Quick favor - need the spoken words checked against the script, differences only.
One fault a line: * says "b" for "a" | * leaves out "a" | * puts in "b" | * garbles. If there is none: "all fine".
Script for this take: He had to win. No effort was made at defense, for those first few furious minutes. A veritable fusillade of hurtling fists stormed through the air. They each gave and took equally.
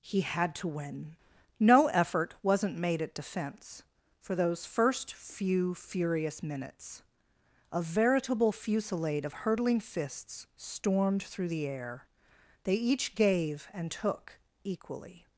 * says "wasn't" for "was"